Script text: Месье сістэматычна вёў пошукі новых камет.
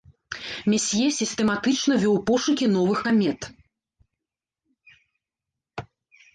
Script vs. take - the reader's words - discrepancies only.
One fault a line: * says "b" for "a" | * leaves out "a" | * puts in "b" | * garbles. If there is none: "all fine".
all fine